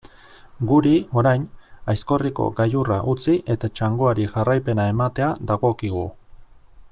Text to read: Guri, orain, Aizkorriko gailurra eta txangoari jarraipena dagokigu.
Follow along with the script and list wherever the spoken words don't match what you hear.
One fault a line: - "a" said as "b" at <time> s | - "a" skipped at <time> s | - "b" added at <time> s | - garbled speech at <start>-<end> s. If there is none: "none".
- "utzi" added at 3.1 s
- "ematea" added at 5.0 s